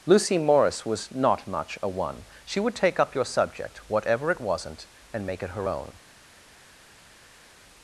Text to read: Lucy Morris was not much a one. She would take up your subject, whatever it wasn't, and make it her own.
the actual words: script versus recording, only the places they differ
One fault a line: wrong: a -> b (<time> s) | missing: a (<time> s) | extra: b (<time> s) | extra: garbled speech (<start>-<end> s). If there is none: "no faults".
no faults